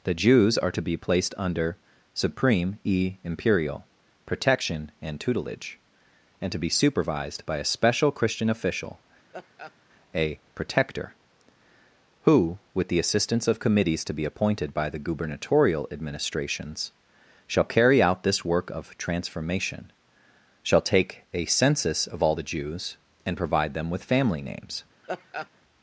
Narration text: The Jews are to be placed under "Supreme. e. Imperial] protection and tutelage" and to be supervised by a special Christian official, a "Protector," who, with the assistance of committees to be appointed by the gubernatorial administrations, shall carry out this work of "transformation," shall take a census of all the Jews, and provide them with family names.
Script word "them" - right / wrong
right